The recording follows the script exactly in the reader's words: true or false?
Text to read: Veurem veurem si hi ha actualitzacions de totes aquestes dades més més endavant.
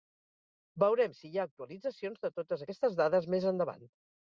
false